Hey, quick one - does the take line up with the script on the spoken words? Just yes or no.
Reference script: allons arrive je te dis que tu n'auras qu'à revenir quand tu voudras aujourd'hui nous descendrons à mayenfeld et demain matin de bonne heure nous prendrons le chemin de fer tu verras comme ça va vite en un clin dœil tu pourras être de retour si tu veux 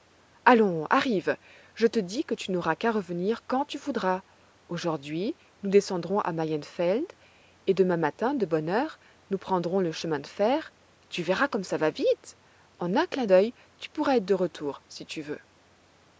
yes